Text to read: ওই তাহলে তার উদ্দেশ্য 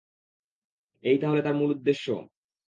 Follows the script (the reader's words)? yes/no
no